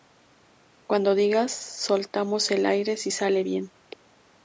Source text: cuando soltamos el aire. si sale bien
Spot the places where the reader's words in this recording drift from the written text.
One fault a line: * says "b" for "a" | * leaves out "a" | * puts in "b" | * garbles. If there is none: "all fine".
* puts in "digas"